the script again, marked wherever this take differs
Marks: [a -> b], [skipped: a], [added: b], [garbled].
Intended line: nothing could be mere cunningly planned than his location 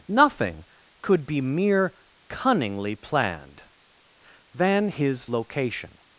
nothing could be mere cunningly planned than his location